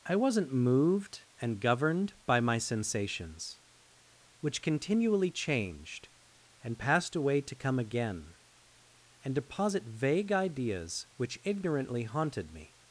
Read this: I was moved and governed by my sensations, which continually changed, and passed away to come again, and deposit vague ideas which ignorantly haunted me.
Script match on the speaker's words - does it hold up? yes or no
no